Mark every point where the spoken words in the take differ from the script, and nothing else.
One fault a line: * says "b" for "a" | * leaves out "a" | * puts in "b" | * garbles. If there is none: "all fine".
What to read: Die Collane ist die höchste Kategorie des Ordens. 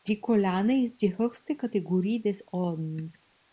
all fine